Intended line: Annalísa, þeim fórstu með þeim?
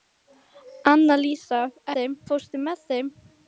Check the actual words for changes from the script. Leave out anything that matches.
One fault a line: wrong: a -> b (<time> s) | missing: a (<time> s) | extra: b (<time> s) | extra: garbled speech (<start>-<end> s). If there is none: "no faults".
no faults